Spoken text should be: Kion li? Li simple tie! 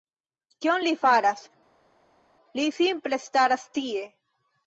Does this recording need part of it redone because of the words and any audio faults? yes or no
yes